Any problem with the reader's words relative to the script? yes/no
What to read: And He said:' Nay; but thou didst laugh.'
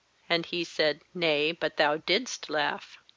no